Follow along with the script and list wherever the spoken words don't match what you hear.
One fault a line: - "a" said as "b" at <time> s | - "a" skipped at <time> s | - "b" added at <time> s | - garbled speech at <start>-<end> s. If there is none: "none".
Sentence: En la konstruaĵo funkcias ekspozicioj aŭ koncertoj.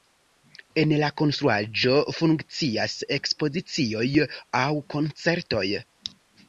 none